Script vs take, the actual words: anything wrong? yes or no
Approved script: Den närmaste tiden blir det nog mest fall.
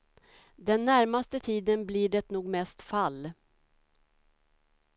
no